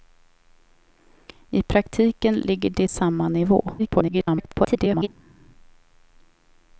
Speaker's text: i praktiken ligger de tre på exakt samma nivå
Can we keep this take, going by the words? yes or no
no